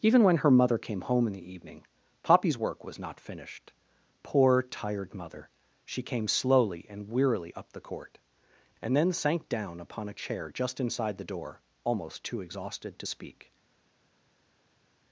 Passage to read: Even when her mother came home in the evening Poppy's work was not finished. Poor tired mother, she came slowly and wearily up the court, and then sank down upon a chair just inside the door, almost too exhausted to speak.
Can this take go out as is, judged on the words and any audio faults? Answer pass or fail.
pass